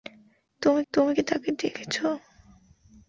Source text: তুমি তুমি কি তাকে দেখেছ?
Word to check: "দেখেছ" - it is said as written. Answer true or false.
true